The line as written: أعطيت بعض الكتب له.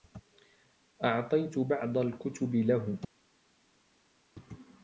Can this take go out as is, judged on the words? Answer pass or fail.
pass